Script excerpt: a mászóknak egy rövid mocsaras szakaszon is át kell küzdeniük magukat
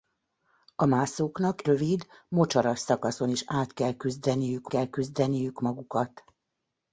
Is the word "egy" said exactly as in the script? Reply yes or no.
no